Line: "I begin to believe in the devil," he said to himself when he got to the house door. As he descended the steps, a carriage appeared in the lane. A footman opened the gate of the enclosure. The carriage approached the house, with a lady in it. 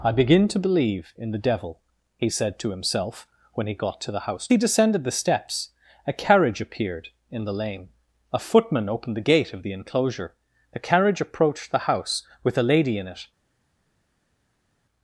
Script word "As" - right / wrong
wrong